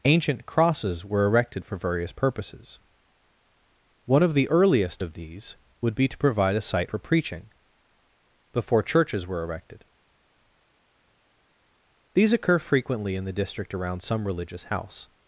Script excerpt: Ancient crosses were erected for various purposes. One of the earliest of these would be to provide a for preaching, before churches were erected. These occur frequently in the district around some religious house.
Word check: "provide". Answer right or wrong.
right